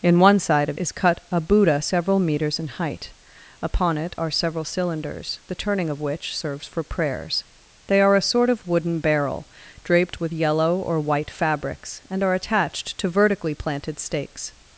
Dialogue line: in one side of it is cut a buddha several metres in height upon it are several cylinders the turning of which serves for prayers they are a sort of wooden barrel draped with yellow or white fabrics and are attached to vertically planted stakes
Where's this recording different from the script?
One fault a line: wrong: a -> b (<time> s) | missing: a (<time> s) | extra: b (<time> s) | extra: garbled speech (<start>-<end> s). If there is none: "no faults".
missing: it (0.8 s)